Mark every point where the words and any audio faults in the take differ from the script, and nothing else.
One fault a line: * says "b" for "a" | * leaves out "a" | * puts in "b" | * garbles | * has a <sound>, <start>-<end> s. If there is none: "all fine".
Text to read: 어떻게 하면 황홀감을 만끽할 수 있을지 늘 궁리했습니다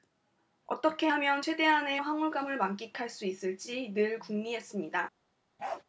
* puts in "최대한의"
* has a bark, 5.6-5.8 s